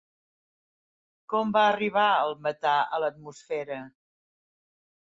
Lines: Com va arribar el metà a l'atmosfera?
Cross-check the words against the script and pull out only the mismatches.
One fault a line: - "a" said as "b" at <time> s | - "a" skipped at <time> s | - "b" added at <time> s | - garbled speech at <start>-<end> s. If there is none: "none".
none